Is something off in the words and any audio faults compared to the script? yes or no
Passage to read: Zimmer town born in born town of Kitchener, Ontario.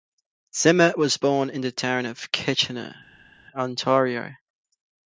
yes